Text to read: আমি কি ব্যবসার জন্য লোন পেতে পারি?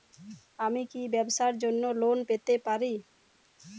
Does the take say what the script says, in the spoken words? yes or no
yes